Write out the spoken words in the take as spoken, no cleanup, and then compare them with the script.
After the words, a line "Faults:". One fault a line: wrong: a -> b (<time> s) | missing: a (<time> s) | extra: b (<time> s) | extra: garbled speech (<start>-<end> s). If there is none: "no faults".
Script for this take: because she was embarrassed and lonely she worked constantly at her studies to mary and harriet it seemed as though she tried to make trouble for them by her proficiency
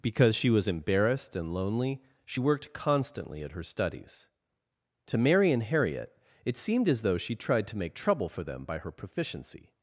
because she was embarrassed and lonely she worked constantly at her studies to mary and harriet it seemed as though she tried to make trouble for them by her proficiency
Faults:
no faults